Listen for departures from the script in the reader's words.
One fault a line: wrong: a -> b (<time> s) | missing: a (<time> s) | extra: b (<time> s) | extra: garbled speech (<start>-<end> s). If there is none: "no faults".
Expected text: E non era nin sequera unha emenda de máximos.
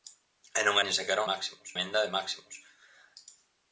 missing: era (0.8 s)
wrong: unha -> máximos (1.3 s)